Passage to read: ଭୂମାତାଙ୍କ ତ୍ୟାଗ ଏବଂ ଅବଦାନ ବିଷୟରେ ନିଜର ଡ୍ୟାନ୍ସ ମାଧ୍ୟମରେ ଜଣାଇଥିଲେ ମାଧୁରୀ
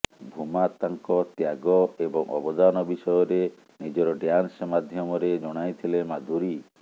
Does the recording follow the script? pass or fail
pass